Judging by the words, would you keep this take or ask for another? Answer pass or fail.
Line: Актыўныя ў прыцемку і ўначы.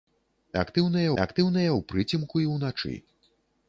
fail